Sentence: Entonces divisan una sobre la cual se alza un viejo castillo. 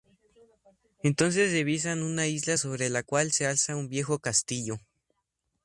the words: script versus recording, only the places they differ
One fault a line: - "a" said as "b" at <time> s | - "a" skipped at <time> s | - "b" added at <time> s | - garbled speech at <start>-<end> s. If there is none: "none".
- "isla" added at 2.2 s